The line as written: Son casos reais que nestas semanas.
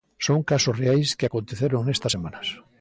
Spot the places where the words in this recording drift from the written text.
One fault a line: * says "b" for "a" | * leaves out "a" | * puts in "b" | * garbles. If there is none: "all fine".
* puts in "aconteceron"